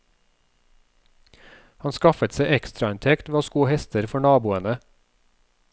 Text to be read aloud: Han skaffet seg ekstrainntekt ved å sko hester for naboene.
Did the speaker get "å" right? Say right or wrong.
right